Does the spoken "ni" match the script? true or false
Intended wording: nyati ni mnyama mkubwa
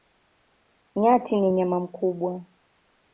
true